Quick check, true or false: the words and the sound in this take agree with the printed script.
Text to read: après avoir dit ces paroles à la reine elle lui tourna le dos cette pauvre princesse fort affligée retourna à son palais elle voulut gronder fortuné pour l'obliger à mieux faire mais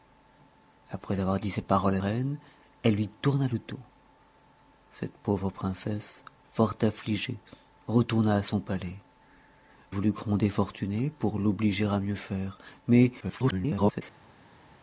false